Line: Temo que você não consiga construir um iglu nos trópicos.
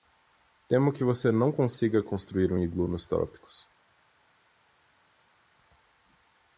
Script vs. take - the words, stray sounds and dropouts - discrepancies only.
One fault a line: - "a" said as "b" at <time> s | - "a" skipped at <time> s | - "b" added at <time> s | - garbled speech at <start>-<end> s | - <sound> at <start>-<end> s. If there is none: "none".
none